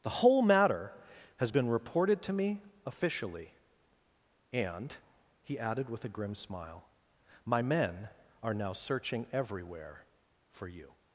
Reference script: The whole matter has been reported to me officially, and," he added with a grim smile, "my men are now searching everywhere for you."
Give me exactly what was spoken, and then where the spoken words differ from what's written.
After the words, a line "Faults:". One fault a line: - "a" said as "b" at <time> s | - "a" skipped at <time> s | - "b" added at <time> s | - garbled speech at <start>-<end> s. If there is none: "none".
The whole matter has been reported to me officially, and," he added with a grim smile, "my men are now searching everywhere for you."
Faults:
none